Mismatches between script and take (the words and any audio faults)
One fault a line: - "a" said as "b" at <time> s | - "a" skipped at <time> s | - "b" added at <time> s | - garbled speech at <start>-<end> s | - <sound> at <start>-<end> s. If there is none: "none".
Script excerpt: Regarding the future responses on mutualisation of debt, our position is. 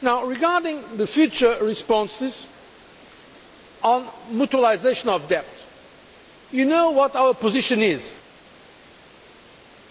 - "you know what" added at 6.5 s